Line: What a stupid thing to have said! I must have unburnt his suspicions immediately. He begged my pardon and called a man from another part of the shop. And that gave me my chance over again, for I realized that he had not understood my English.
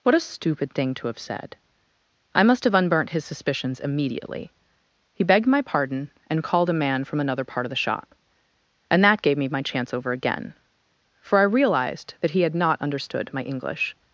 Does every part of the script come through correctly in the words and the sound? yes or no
yes